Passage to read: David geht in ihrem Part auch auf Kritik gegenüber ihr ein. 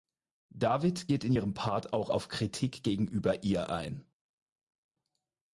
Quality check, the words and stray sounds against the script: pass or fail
pass